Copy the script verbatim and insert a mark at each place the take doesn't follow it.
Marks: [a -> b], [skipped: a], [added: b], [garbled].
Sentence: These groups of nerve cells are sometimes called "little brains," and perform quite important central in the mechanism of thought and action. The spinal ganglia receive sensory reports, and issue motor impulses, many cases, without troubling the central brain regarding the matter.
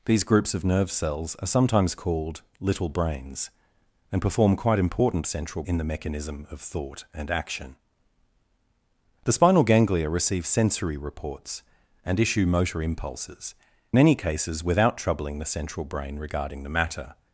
These groups of nerve cells are sometimes called "little brains," and perform quite important central in the mechanism of thought and action. The spinal ganglia receive sensory reports, and issue motor impulses, many cases, without troubling the central brain regarding the matter.